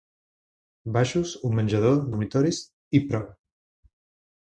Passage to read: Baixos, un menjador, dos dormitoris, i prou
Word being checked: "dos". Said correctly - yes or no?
no